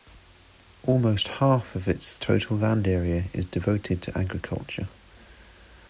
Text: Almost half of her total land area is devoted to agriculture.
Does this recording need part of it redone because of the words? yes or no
yes